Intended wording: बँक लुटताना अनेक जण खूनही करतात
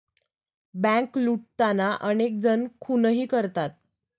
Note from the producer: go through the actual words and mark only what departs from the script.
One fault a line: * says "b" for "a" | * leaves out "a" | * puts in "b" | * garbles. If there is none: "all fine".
all fine